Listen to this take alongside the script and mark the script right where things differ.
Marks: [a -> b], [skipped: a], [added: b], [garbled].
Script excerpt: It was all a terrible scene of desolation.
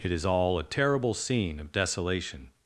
It [was -> is] all a terrible scene of desolation.